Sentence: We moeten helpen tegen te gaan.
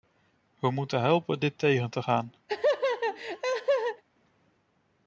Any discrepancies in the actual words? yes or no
yes